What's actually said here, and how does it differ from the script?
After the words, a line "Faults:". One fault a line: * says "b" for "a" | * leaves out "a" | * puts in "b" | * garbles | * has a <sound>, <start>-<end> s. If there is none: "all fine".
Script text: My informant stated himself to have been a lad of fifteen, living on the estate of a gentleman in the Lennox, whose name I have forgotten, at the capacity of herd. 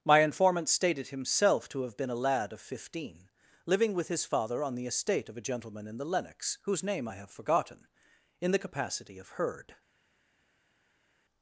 My informant stated himself to have been a lad of fifteen, living with his father on the estate of a gentleman in the Lennox, whose name I have forgotten, in the capacity of herd.
Faults:
* puts in "with his father"
* says "in" for "at"